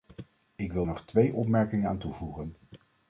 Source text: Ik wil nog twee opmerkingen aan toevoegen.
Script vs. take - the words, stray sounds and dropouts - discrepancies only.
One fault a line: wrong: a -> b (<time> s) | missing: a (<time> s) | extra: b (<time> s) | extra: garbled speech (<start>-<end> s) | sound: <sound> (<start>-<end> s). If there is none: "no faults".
no faults